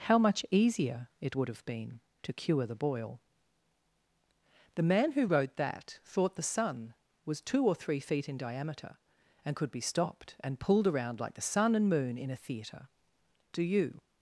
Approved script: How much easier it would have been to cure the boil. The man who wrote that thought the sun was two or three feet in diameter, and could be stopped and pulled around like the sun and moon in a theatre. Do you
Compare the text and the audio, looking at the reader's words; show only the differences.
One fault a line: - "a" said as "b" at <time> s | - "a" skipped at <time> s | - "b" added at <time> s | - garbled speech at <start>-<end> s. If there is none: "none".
none